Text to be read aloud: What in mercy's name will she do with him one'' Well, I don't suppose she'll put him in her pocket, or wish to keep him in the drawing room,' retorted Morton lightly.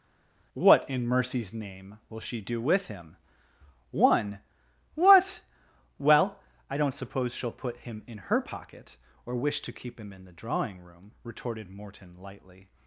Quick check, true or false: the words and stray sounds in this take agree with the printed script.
false